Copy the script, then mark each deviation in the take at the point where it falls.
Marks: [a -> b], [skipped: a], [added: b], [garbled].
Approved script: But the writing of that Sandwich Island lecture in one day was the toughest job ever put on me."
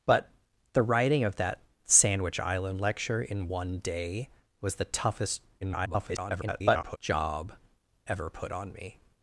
But the writing of that Sandwich Island lecture in one day was the toughest [garbled] job ever put on me."